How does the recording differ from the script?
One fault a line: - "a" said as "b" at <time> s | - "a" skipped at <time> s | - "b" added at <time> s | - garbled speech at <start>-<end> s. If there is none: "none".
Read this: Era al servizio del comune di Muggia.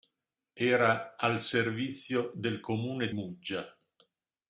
- "di" skipped at 3.1 s